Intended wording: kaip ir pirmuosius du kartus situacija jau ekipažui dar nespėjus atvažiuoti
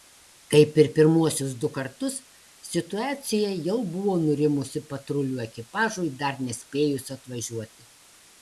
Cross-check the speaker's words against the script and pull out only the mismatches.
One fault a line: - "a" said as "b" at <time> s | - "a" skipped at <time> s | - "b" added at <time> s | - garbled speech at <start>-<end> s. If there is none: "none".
- "buvo nurimusi patrulių" added at 4.0 s